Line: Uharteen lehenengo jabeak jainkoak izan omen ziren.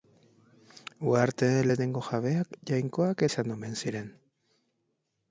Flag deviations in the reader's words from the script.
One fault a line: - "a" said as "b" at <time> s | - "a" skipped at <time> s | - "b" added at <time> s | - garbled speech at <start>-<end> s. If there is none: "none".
none